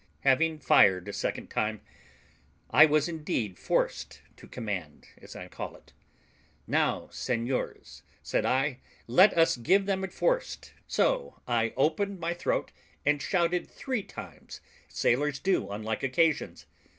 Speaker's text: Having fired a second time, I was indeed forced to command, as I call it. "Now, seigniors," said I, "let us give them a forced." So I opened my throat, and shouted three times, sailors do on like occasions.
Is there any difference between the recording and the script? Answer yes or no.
no